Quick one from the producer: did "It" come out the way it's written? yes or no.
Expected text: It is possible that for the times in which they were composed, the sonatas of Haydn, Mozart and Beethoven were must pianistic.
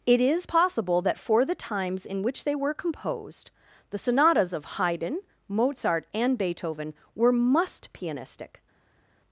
yes